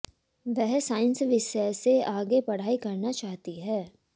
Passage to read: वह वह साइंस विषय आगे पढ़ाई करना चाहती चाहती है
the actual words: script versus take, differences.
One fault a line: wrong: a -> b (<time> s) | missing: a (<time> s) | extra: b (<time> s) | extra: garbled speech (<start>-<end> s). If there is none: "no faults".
missing: वह (0.8 s)
extra: से (1.7 s)
missing: चाहती (3.6 s)